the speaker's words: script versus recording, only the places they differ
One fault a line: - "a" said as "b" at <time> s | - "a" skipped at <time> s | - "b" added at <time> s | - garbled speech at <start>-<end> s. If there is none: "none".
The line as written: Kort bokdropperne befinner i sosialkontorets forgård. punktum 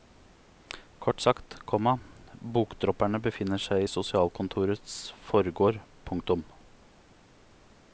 - "sagt komma" added at 1.2 s
- "seg" added at 3.6 s